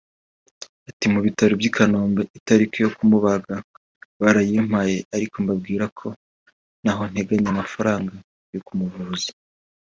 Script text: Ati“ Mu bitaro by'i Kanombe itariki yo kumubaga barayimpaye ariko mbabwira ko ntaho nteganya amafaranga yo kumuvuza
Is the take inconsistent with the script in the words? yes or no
no